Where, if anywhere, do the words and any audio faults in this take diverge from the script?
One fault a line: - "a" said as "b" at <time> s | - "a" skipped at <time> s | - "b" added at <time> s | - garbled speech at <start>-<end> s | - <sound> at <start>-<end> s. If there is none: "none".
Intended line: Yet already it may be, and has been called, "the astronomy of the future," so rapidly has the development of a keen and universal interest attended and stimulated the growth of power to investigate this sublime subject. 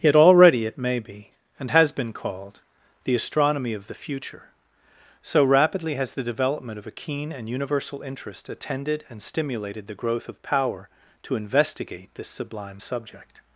none